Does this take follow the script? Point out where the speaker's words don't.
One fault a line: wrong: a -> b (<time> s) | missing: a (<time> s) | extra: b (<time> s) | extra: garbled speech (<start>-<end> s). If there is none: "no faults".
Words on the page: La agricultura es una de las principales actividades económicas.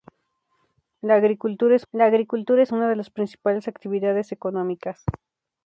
extra: la agricultura es (1.9 s)